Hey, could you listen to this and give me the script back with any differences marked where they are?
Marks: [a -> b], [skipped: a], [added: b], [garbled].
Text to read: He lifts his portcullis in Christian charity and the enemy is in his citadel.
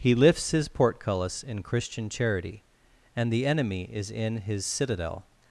He lifts his portcullis in Christian charity and the enemy is in his citadel.